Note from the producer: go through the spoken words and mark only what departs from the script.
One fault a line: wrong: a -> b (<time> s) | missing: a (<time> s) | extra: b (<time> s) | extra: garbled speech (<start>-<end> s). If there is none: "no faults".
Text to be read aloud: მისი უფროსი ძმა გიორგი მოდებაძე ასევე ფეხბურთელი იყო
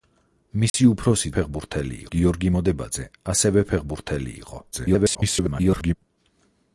wrong: ძმა -> ფეხბურთელი (1.4 s)
extra: garbled speech (4.7-5.9 s)